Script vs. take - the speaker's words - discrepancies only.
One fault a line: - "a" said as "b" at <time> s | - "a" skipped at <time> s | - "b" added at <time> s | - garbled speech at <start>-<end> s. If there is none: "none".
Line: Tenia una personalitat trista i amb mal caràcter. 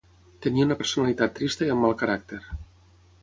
none